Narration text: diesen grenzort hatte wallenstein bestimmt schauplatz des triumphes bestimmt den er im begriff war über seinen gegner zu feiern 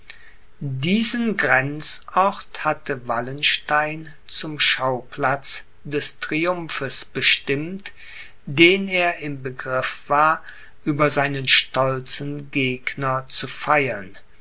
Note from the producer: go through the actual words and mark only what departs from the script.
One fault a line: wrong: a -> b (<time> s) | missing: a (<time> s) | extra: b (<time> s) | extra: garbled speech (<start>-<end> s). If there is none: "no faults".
wrong: bestimmt -> zum (4.3 s)
extra: stolzen (11.5 s)